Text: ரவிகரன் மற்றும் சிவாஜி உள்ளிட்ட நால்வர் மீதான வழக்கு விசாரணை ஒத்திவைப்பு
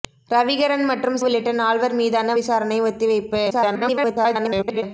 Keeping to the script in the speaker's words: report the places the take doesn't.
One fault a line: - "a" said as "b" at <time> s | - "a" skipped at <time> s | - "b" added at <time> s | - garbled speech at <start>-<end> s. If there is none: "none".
- "சிவாஜி" skipped at 1.2 s
- "வழக்கு" skipped at 2.4 s
- garbled speech at 3.5-4.8 s